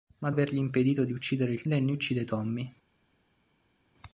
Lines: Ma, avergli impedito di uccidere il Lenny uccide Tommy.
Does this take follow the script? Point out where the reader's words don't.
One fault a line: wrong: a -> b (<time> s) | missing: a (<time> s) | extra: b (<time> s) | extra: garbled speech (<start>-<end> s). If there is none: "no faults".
no faults